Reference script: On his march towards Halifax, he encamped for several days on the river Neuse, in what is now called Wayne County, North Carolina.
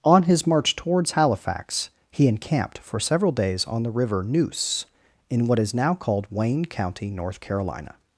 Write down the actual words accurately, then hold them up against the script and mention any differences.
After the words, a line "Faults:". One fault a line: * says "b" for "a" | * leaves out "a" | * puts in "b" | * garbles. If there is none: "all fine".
On his march towards Halifax, he encamped for several days on the river Neuse, in what is now called Wayne County, North Carolina.
Faults:
all fine